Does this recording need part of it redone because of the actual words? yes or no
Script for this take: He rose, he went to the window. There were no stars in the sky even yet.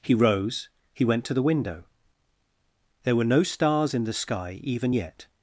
no